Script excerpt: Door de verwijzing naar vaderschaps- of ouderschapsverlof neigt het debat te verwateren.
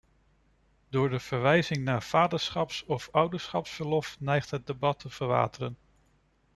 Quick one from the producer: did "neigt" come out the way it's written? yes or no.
yes